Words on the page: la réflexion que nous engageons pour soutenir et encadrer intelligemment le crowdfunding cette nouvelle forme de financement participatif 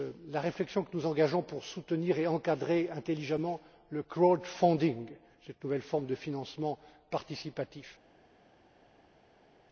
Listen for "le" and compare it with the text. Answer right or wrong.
right